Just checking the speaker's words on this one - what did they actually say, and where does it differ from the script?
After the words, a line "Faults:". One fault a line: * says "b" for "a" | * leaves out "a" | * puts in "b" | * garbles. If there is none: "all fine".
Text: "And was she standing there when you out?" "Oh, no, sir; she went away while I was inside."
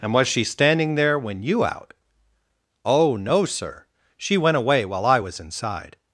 "And was she standing there when you out?" "Oh, no, sir; she went away while I was inside."
Faults:
all fine